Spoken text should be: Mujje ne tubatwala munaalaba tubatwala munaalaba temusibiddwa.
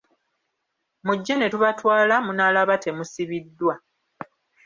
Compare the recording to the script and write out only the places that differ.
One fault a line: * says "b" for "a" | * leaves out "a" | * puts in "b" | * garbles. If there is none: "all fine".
* leaves out "tubatwala munaalaba"